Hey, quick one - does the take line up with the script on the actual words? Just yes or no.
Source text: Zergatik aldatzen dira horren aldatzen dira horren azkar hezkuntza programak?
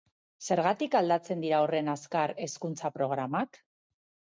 no